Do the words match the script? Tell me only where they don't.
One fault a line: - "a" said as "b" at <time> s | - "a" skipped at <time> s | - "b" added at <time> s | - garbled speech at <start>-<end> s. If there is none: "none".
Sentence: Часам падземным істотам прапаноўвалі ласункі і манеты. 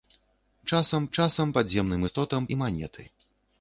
- "часам" added at 1.2 s
- "прапаноўвалі ласункі" skipped at 2.5 s